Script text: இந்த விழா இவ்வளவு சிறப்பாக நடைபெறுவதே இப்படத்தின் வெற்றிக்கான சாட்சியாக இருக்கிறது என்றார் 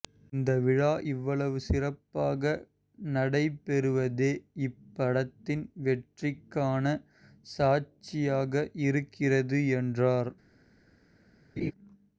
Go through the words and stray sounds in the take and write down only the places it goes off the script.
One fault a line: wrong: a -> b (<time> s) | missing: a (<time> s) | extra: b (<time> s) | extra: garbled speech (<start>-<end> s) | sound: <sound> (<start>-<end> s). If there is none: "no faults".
sound: laugh (11.6-11.7 s)